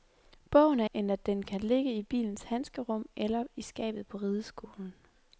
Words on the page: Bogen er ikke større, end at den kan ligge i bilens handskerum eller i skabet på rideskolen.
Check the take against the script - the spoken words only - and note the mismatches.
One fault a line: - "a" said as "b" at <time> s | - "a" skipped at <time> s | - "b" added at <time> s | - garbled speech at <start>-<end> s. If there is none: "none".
- "ikke større" skipped at 0.9 s